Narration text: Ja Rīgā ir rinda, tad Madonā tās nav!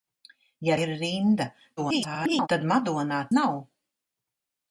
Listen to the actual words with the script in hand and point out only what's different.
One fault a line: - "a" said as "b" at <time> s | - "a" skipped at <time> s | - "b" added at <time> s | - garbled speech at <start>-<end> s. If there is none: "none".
- "Rīgā" skipped at 0.8 s
- garbled speech at 1.8-2.5 s
- "tās" skipped at 3.2 s